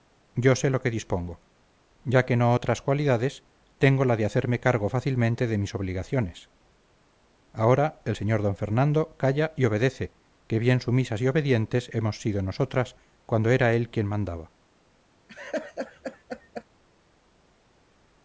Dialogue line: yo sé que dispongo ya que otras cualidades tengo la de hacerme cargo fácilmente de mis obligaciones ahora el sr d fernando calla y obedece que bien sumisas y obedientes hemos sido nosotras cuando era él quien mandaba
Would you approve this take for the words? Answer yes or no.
no